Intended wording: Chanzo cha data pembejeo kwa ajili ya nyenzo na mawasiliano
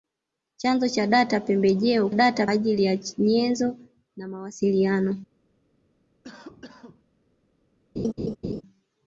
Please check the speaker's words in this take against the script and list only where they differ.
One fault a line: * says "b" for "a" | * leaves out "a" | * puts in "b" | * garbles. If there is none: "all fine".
* says "data" for "kwa"